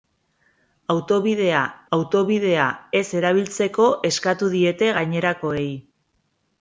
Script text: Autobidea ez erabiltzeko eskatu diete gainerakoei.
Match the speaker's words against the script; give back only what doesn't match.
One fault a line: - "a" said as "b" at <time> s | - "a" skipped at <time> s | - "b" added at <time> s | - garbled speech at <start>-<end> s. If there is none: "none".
- "autobidea" added at 2.0 s